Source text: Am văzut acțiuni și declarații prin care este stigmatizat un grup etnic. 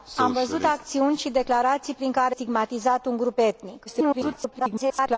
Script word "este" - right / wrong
wrong